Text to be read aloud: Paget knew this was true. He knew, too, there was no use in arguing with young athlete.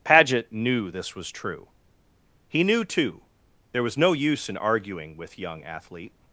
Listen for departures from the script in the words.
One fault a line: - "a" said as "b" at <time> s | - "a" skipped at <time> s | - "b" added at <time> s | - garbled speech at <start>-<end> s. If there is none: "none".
none